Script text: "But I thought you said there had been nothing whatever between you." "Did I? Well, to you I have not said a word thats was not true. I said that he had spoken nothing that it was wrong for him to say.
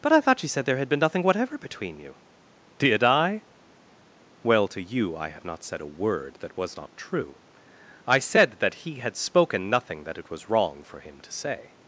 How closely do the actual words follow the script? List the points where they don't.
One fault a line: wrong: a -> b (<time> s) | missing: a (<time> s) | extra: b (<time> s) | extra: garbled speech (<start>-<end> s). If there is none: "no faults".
wrong: thats -> that (6.4 s)